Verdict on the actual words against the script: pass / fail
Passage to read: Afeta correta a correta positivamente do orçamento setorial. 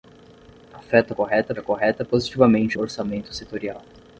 pass